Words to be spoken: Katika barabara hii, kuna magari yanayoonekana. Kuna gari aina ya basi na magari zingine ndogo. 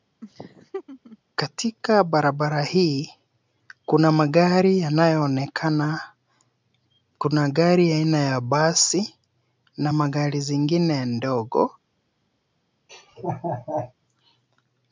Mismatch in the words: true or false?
false